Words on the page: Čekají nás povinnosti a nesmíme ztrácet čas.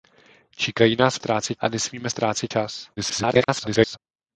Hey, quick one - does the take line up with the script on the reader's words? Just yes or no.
no